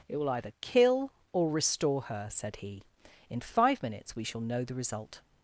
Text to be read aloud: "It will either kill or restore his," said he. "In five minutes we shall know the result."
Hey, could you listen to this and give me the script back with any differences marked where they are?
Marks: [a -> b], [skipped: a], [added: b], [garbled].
"It will either kill or restore [his," -> her] said he. "In five minutes we shall know the result."